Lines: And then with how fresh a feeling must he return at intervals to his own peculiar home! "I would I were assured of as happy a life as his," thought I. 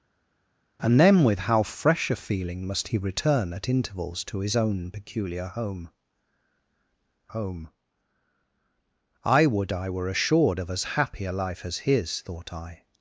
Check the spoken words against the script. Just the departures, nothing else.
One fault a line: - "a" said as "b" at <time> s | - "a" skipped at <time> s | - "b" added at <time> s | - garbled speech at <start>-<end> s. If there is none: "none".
- "home" added at 7.3 s